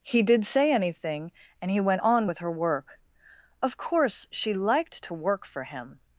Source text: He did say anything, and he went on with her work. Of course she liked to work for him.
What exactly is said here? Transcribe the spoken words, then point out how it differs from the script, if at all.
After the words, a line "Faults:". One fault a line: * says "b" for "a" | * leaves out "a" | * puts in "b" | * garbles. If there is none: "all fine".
He did say anything, and he went on with her work. Of course she liked to work for him.
Faults:
all fine